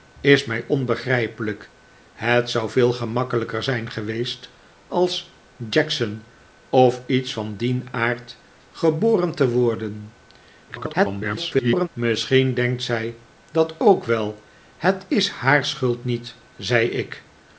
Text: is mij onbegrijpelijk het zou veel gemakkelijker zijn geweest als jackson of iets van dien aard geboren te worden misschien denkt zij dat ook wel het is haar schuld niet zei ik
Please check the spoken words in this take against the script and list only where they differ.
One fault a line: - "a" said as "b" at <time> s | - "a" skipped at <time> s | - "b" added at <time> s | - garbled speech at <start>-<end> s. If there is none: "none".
- garbled speech at 10.7-11.9 s